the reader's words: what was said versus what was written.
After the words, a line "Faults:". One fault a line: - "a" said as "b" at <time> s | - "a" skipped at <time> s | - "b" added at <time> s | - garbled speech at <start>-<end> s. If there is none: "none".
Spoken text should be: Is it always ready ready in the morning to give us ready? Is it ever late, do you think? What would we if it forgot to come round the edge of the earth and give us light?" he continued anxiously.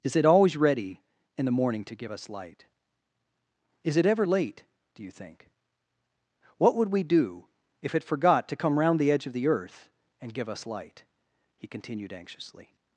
Is it always ready in the morning to give us light? Is it ever late, do you think? What would we do if it forgot to come round the edge of the earth and give us light?" he continued anxiously.
Faults:
- "ready" skipped at 1.0 s
- "ready" said as "light" at 2.3 s
- "do" added at 7.0 s